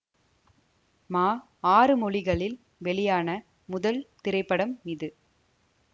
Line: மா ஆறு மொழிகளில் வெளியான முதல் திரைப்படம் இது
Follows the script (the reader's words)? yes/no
yes